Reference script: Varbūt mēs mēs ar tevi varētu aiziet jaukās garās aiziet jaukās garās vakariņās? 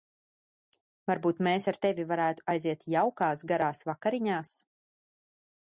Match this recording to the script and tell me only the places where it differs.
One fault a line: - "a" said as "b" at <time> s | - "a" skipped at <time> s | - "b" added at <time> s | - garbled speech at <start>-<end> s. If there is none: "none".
- "mēs" skipped at 1.7 s
- "aiziet jaukās garās" skipped at 3.8 s